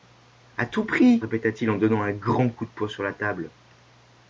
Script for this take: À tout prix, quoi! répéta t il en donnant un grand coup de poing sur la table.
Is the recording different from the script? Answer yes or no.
yes